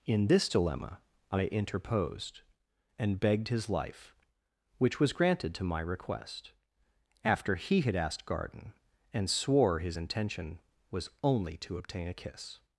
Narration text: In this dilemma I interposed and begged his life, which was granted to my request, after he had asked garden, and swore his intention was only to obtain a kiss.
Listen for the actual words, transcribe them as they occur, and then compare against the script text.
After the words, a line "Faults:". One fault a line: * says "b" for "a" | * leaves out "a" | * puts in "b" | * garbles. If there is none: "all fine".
In this dilemma I interposed and begged his life, which was granted to my request, after he had asked garden, and swore his intention was only to obtain a kiss.
Faults:
all fine